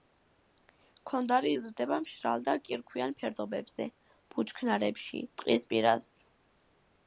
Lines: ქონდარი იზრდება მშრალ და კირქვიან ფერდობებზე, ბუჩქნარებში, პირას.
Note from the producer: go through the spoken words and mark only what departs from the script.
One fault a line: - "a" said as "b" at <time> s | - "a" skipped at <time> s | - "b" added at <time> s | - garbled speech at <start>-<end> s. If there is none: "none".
- "ტყის" added at 5.4 s